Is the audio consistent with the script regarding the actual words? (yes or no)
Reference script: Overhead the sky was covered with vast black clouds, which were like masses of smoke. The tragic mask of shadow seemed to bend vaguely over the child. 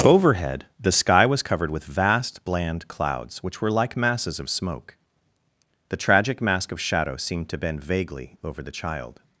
no